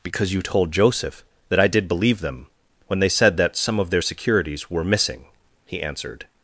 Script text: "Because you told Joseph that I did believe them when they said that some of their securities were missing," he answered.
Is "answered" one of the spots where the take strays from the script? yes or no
no